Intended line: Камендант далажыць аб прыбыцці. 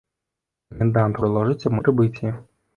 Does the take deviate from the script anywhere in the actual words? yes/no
no